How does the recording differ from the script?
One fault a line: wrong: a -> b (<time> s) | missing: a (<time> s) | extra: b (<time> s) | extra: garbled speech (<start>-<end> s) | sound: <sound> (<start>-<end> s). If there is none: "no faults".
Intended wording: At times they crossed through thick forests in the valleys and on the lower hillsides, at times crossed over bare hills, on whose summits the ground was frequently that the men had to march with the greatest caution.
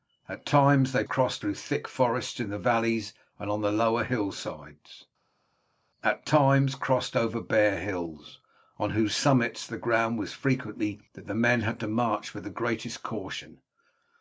no faults